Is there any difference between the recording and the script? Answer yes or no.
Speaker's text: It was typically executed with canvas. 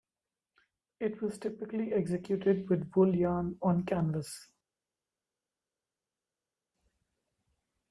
yes